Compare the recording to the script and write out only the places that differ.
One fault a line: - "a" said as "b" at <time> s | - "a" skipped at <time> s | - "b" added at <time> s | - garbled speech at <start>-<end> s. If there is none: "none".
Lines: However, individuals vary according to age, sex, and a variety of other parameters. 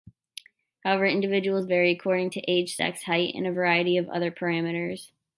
- "height" added at 3.0 s